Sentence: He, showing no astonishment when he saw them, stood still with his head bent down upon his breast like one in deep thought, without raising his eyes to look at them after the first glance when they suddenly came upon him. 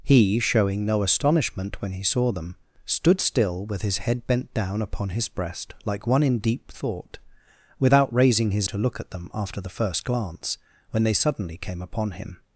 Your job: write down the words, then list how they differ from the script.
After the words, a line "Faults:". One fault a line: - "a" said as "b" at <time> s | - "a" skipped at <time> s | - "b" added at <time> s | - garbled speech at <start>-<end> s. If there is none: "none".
He, showing no astonishment when he saw them, stood still with his head bent down upon his breast like one in deep thought, without raising his to look at them after the first glance when they suddenly came upon him.
Faults:
- "eyes" skipped at 8.7 s